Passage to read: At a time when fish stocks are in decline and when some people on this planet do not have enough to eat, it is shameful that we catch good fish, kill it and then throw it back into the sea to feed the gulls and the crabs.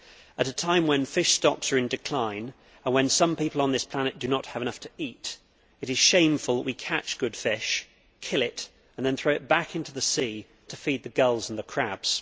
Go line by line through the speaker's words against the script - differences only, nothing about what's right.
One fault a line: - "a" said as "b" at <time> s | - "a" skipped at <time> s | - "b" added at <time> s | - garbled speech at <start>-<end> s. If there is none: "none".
none